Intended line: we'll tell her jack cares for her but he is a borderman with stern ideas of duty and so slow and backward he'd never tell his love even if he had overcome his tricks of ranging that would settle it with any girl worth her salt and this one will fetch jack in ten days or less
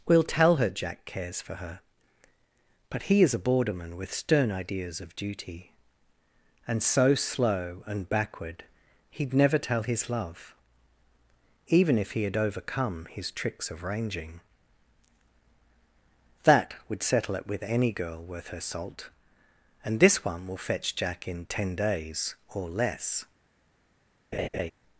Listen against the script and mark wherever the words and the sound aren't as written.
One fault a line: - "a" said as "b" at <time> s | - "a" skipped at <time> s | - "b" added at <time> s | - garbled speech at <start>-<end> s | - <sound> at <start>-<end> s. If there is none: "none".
- laugh at 24.3-24.7 s